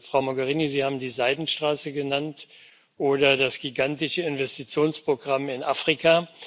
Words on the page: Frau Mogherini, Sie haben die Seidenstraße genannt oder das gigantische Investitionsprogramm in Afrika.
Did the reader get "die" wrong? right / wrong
right